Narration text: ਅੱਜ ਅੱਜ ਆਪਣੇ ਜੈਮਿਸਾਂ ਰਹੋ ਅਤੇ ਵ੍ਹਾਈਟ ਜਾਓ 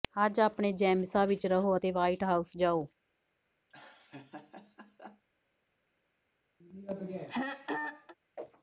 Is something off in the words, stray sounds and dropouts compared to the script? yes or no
yes